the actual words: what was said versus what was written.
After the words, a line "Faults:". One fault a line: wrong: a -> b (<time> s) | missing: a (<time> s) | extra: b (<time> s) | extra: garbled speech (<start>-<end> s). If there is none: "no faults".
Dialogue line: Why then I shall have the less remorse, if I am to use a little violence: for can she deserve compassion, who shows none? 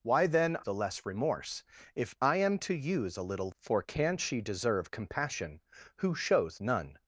Why then the less remorse, if I am to use a little: for can she deserve compassion, who shows none?
Faults:
missing: I shall have (0.6 s)
missing: violence (3.5 s)